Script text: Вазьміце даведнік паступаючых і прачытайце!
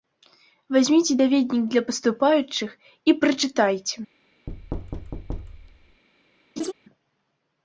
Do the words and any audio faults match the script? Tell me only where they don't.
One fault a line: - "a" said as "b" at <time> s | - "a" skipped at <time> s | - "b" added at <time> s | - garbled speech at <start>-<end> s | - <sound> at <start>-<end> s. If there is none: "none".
- "для" added at 1.7 s
- thud at 4.5-6.0 s
- laugh at 6.6-6.7 s